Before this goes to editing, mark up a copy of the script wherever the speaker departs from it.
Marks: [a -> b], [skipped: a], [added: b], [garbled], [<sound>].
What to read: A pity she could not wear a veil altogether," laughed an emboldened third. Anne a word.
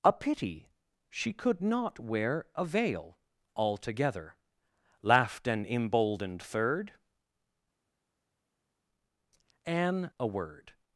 A pity she could not wear a veil altogether," laughed an emboldened third. Anne a word.